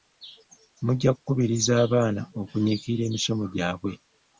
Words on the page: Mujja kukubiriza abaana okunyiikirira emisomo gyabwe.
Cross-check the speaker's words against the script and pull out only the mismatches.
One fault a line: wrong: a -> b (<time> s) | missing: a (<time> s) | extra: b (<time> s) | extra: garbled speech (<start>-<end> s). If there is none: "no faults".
no faults